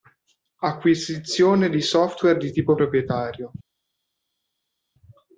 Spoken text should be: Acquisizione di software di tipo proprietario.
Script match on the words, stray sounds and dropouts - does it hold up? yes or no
yes